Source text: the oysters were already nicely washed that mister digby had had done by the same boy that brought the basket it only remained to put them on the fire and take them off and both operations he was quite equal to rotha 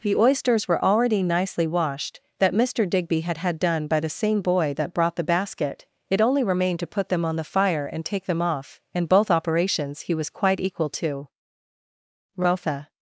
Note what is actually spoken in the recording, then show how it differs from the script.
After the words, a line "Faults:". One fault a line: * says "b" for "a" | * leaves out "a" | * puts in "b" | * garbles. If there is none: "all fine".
the oysters were already nicely washed that mister digby had had done by the same boy that brought the basket it only remained to put them on the fire and take them off and both operations he was quite equal to rotha
Faults:
all fine